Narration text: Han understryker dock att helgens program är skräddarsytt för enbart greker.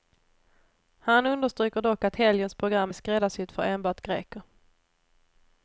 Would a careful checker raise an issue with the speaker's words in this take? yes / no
no